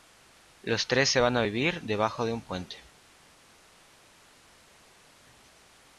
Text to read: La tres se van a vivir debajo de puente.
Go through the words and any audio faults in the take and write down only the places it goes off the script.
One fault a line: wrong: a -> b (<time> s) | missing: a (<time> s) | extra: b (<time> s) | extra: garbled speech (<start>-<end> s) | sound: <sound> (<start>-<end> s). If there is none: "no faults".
wrong: La -> Los (0.6 s)
extra: un (2.3 s)